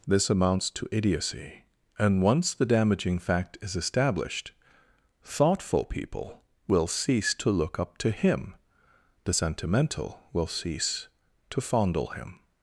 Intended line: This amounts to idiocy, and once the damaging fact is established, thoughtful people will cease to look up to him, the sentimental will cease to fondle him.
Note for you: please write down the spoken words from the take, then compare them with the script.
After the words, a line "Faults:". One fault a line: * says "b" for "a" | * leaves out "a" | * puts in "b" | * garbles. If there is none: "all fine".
This amounts to idiocy, and once the damaging fact is established, thoughtful people will cease to look up to him, the sentimental will cease to fondle him.
Faults:
all fine